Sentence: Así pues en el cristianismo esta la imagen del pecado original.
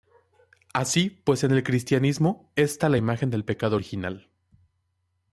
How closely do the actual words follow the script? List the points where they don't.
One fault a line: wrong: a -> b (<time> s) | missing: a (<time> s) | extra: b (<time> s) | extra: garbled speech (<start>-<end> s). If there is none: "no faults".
no faults